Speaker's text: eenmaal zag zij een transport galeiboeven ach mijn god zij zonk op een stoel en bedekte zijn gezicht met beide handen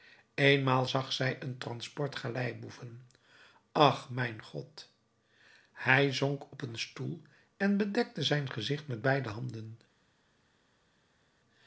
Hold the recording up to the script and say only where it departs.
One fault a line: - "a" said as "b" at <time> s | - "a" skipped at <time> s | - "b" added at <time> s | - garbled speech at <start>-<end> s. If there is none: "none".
- "zij" said as "hij" at 5.7 s